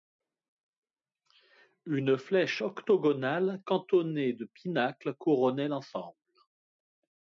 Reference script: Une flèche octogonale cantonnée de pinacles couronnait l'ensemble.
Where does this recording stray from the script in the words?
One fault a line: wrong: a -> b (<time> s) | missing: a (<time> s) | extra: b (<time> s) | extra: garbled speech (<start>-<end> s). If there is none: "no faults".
no faults